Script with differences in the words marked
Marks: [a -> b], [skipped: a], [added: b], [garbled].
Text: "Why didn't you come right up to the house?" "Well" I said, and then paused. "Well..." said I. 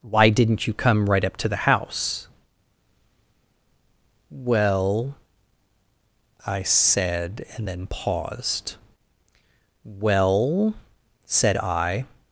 "Why didn't you come right up to the house?" "Well" I said, and then paused. "Well..." said I.